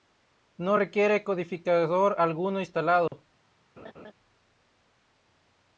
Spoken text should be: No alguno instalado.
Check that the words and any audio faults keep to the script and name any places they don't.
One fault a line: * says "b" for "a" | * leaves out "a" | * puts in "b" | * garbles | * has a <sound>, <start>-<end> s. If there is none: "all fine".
* puts in "requiere codificador"
* has a dropout, 3.1-3.1 s
* has a laugh, 3.8-4.1 s